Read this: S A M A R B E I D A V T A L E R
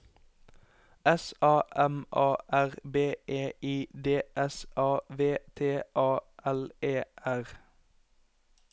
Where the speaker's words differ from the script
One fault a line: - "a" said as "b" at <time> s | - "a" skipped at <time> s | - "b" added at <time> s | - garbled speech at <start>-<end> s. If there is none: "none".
- "S" added at 4.3 s